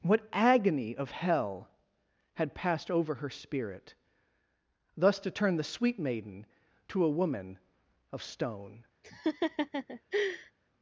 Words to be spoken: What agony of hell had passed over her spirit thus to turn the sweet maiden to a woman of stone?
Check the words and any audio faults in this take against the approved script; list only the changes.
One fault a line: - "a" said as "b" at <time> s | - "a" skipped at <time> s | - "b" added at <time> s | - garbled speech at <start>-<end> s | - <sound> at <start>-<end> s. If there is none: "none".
- laugh at 9.0-10.5 s